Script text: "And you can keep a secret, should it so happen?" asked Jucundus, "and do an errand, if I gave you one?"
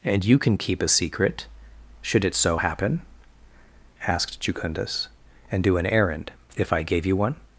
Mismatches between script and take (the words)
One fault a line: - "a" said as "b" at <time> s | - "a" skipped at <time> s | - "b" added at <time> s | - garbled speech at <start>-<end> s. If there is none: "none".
none